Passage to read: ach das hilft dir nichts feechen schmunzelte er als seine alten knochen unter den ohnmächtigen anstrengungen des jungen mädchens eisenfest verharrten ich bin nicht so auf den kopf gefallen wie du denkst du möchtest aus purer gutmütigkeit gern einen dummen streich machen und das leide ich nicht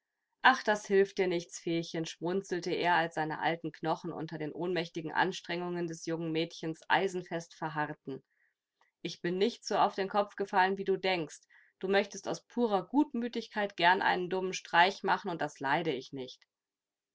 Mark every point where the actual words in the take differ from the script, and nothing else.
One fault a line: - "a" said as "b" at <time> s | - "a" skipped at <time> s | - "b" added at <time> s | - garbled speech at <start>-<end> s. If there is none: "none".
none